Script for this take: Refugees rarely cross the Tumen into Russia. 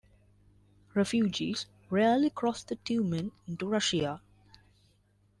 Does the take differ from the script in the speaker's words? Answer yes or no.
no